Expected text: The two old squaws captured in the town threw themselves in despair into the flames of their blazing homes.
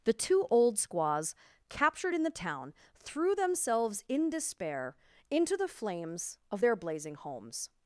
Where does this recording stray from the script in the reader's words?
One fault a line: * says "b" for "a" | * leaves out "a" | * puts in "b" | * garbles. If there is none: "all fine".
all fine